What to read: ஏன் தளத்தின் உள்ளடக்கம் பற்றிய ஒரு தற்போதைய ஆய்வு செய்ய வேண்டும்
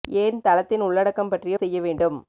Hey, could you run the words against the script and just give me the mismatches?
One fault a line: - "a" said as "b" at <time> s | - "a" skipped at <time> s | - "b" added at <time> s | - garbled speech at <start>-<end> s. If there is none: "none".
- "ஒரு தற்போதைய ஆய்வு" skipped at 1.6 s